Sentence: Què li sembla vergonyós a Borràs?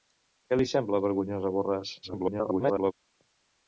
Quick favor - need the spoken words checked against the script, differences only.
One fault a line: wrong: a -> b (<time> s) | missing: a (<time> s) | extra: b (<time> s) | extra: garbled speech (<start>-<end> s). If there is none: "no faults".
extra: garbled speech (2.0-2.9 s)